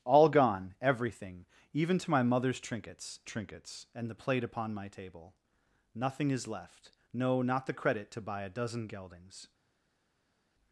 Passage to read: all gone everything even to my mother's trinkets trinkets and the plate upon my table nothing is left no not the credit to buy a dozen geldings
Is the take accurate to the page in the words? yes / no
yes